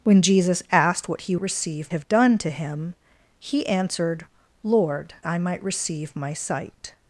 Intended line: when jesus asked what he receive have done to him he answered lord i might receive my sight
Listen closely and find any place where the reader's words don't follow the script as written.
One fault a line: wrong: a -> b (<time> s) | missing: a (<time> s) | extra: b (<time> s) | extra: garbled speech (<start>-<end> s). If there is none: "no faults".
no faults